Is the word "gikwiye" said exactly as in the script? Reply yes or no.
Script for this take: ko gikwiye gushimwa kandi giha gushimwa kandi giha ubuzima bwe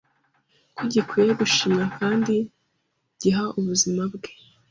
yes